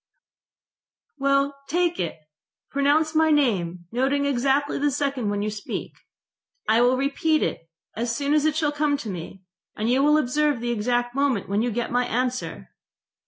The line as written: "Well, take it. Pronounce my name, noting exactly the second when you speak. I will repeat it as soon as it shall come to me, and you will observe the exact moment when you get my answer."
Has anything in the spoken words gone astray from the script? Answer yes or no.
no